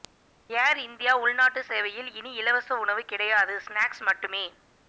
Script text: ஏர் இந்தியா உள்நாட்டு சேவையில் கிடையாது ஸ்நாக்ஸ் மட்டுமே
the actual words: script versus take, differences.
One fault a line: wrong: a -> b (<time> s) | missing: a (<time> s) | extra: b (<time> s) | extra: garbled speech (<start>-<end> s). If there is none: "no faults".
extra: இனி இலவச உணவு (2.1 s)